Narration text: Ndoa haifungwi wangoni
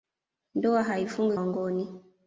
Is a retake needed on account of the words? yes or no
no